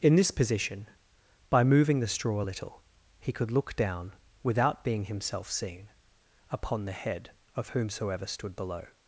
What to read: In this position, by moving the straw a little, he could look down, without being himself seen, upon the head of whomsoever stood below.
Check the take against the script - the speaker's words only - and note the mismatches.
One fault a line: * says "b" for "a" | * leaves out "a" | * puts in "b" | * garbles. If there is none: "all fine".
all fine